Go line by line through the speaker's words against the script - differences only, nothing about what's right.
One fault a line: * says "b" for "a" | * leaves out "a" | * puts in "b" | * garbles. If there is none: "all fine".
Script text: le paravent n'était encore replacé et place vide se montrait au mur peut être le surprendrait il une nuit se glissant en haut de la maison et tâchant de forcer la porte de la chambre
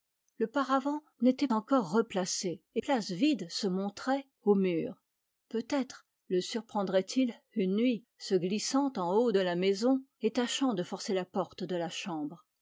all fine